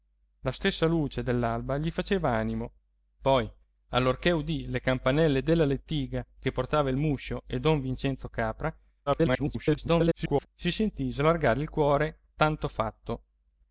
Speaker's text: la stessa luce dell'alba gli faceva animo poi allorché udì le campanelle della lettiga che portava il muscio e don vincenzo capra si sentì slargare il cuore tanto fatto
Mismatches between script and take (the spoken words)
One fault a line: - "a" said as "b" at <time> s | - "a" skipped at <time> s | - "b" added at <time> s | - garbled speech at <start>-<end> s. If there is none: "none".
- garbled speech at 9.1-10.5 s